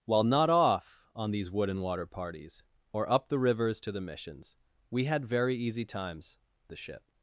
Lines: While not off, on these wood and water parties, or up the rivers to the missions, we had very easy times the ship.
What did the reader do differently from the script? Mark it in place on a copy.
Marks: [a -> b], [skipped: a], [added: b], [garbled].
While not off, on these wood and water parties, or up the rivers to the missions, we had very easy times the ship.